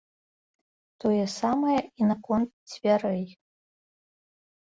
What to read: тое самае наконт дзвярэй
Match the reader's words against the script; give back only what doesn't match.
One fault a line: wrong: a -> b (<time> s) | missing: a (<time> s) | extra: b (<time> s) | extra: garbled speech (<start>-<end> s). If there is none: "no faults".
extra: і (1.8 s)